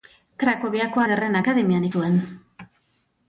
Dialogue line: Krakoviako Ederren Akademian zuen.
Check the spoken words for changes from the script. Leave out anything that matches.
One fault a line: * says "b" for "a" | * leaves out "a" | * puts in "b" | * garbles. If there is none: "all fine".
all fine